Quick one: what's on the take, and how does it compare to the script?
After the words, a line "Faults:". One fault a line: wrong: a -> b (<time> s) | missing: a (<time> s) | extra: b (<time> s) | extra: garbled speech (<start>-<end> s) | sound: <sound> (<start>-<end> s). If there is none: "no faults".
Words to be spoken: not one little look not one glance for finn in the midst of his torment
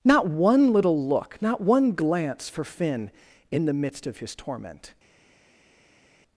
not one little look not one glance for finn in the midst of his torment
Faults:
no faults